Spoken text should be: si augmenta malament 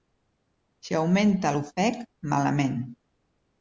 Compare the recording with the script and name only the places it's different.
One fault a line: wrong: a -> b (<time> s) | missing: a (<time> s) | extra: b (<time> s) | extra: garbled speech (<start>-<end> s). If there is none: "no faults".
extra: l'ofec (1.6 s)